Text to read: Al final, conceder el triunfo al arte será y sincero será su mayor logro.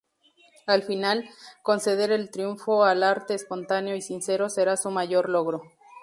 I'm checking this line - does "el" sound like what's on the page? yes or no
yes